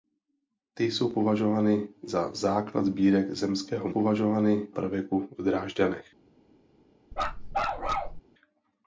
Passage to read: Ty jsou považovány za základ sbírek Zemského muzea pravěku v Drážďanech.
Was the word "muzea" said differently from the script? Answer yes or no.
yes